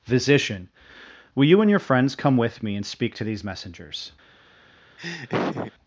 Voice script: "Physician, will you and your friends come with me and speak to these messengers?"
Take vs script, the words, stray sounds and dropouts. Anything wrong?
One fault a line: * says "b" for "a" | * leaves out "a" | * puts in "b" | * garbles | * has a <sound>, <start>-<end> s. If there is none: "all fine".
* has a laugh, 5.0-5.7 s